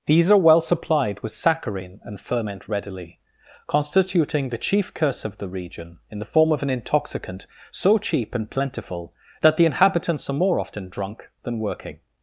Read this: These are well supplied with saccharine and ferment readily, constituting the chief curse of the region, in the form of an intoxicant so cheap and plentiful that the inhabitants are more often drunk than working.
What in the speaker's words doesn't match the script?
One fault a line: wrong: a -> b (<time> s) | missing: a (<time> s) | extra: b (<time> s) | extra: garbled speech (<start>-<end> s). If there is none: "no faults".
no faults